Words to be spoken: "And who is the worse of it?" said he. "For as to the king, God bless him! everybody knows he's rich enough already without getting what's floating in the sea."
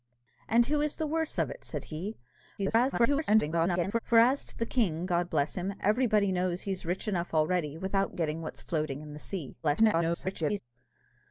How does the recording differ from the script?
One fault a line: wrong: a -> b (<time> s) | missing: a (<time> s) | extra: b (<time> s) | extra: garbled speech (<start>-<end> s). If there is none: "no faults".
extra: garbled speech (2.6-4.0 s)
extra: garbled speech (9.6-10.6 s)